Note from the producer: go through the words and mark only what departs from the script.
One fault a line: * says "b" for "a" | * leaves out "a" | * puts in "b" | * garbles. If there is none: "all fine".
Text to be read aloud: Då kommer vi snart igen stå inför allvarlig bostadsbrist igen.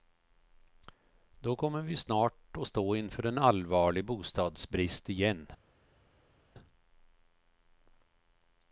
* says "att" for "igen"
* puts in "en"